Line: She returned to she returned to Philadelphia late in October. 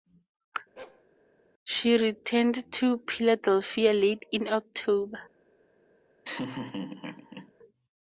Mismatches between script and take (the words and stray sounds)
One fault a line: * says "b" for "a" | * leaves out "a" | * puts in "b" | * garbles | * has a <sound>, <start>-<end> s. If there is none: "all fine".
* has a bark, 0.8-1.0 s
* leaves out "she returned to"
* has a laugh, 6.2-7.5 s